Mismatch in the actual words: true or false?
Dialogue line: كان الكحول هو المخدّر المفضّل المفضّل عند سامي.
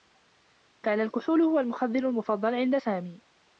true